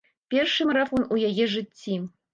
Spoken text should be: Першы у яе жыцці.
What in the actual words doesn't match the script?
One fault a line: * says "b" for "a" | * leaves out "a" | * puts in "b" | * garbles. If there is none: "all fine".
* puts in "марафон"